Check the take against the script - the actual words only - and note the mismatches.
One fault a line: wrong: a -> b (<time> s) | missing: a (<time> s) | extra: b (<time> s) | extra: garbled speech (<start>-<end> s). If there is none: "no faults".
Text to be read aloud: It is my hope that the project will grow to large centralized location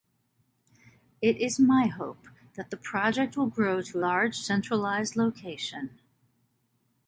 no faults